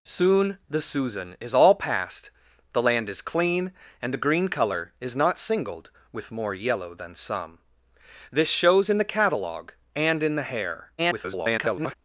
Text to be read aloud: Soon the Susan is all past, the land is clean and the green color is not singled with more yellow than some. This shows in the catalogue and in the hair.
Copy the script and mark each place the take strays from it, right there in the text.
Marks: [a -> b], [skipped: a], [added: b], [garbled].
Soon the Susan is all past, the land is clean and the green color is not singled with more yellow than some. This shows in the catalogue and in the hair. [garbled]